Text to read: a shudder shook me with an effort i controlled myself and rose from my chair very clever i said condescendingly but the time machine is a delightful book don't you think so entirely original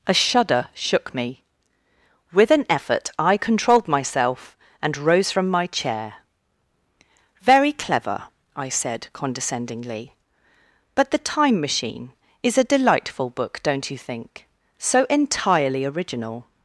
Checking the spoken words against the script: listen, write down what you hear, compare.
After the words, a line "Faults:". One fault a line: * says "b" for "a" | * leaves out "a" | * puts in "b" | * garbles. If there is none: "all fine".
a shudder shook me with an effort i controlled myself and rose from my chair very clever i said condescendingly but the time machine is a delightful book don't you think so entirely original
Faults:
all fine